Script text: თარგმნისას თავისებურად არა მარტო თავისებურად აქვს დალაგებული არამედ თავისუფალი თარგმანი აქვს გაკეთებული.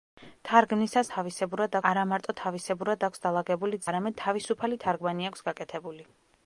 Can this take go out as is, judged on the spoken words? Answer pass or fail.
pass